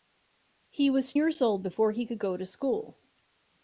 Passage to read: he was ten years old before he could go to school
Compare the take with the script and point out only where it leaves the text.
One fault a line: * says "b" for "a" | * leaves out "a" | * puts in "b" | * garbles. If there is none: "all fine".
* leaves out "ten"